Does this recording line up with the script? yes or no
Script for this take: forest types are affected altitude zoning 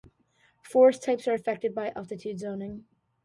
no